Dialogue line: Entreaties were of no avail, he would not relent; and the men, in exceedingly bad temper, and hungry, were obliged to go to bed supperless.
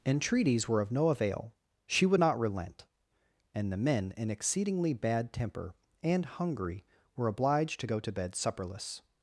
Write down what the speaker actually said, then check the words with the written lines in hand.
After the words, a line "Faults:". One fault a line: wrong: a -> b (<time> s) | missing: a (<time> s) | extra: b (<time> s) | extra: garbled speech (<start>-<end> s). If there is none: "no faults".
Entreaties were of no avail, she would not relent; and the men, in exceedingly bad temper, and hungry, were obliged to go to bed supperless.
Faults:
wrong: he -> she (1.9 s)